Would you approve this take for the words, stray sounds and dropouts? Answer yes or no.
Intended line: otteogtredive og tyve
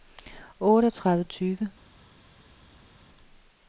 yes